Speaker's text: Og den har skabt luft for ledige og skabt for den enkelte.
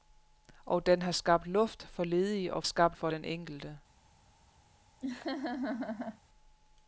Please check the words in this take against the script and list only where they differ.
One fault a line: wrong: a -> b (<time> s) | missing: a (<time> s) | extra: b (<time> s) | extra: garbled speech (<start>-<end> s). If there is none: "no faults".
no faults